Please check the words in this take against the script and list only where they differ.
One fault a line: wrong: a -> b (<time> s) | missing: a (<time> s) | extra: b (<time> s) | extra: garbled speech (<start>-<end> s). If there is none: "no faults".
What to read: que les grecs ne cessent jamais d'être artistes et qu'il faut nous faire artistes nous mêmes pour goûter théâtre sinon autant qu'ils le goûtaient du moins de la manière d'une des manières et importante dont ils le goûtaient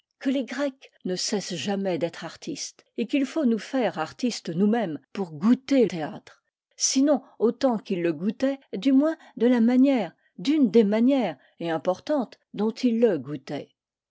no faults